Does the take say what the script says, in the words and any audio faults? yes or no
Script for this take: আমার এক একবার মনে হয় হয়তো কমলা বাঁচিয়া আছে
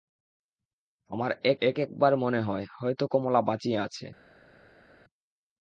no